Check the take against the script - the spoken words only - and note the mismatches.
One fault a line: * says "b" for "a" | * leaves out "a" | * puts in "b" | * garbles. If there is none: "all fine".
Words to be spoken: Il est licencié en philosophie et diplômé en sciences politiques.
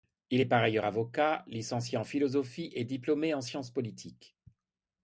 * puts in "par ailleurs avocat"